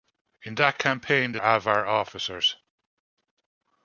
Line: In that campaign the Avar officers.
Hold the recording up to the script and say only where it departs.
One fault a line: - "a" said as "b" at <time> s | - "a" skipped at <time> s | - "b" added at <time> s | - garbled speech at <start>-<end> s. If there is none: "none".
none